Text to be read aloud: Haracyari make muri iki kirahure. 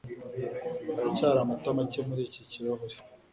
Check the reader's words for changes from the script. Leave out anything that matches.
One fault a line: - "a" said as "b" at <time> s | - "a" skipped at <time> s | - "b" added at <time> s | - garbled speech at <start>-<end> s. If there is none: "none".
- "amata" added at 1.4 s